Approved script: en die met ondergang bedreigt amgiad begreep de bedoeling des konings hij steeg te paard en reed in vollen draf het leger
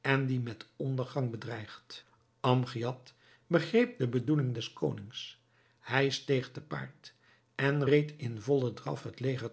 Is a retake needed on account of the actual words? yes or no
no